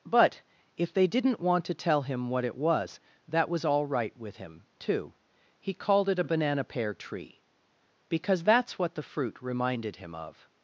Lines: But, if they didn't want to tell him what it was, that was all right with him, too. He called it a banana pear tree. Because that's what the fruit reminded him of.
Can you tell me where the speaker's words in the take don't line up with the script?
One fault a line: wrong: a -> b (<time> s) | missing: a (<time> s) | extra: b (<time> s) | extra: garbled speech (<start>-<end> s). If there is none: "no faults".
no faults